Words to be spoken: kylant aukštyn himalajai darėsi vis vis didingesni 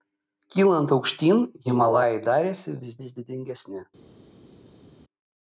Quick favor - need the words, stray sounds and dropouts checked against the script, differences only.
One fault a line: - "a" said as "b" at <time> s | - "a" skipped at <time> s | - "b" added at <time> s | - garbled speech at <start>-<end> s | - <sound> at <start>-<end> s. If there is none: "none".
none